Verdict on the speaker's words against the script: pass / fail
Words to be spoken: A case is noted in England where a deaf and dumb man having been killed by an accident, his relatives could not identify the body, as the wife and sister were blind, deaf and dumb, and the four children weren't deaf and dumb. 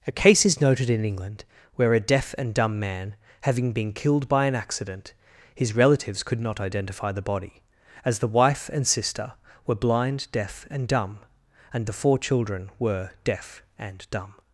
fail